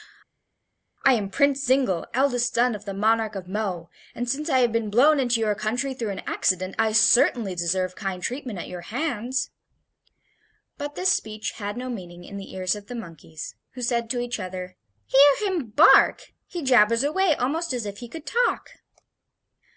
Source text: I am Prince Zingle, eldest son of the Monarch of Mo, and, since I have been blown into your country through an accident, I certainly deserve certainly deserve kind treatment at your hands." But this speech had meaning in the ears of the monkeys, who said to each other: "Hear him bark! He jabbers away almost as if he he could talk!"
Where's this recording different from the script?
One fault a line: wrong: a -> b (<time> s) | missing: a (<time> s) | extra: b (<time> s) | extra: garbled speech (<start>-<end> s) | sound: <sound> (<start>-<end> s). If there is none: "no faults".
missing: certainly deserve (8.0 s)
extra: no (11.8 s)
missing: he (18.1 s)